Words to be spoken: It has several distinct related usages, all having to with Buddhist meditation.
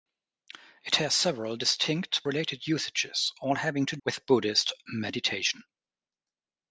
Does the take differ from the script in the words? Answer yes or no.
no